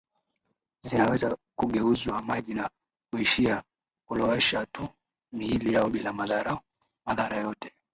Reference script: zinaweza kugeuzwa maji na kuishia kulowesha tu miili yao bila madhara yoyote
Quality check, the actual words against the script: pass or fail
pass